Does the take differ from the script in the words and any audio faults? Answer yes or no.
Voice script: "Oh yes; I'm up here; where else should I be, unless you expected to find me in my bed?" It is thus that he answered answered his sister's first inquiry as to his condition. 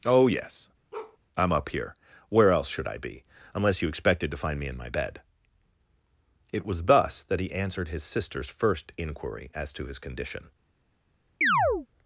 yes